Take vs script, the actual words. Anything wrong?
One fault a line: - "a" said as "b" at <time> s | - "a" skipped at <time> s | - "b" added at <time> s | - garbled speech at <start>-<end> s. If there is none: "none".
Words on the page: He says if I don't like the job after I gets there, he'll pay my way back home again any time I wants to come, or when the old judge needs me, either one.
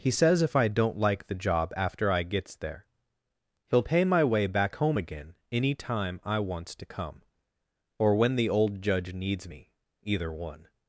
none